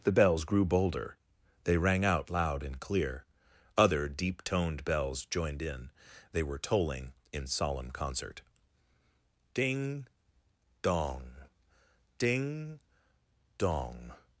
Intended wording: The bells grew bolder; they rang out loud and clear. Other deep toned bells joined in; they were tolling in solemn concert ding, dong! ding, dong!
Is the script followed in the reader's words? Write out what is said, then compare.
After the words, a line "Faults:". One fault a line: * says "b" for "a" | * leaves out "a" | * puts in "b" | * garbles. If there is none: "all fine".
The bells grew bolder; they rang out loud and clear. Other deep toned bells joined in; they were tolling in solemn concert ding, dong! ding, dong!
Faults:
all fine